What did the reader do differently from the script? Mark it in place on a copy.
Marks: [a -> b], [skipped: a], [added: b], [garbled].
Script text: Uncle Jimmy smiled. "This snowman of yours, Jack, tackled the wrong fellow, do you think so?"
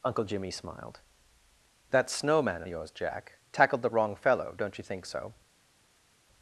Uncle Jimmy smiled. ["This -> That] snowman of yours, Jack, tackled the wrong fellow, [do -> don't] you think so?"